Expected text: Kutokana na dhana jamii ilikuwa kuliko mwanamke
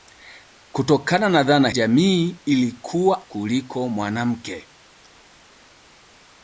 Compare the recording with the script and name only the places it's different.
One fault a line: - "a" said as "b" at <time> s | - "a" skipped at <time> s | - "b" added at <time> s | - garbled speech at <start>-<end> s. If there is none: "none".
none